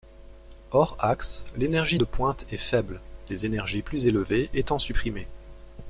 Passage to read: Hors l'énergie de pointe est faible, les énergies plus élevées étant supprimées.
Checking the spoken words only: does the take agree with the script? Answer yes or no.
no